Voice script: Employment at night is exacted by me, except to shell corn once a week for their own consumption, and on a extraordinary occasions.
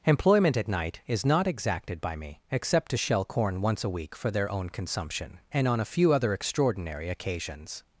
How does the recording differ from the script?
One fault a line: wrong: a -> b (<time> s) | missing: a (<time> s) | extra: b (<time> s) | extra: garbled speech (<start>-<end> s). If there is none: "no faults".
extra: not (1.2 s)
extra: few other (5.8 s)